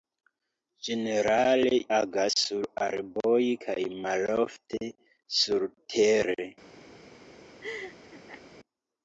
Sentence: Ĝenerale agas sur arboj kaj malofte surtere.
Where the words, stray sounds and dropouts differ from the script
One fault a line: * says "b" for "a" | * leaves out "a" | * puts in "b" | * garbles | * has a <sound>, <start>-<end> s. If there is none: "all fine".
* has a laugh, 7.6-8.4 s